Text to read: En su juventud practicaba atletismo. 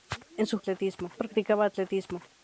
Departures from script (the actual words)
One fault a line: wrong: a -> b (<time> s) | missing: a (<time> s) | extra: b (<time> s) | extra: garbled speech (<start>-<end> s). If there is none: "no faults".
wrong: juventud -> atletismo (0.6 s)